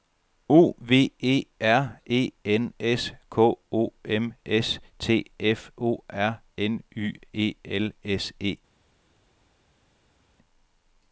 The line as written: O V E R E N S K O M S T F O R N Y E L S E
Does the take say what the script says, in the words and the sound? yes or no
yes